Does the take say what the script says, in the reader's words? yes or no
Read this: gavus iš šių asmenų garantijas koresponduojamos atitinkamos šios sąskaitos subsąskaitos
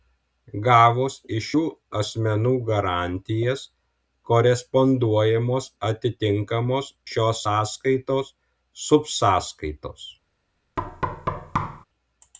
yes